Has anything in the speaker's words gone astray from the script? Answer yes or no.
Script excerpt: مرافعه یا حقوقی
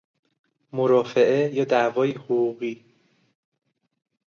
yes